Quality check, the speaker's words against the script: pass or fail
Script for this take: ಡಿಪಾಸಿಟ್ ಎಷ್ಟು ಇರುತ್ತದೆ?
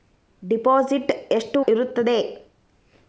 pass